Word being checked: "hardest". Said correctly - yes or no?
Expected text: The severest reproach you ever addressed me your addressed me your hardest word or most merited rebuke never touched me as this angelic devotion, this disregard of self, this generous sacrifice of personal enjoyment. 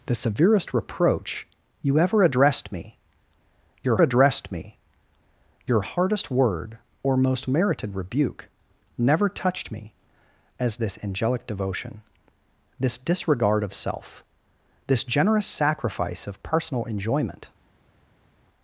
yes